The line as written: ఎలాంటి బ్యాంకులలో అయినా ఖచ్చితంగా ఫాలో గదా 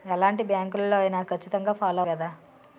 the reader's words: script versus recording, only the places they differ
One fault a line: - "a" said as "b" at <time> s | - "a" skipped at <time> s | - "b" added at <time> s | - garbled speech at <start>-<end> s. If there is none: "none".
none